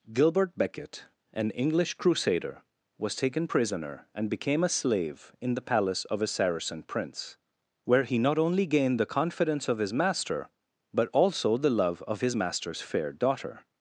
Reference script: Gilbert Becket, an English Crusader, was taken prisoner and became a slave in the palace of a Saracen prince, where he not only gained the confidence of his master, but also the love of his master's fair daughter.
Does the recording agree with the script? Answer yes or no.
yes